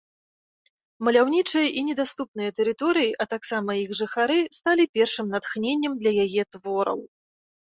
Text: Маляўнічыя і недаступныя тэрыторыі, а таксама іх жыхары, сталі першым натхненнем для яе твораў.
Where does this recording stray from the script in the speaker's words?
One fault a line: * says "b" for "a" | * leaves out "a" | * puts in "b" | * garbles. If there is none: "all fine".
all fine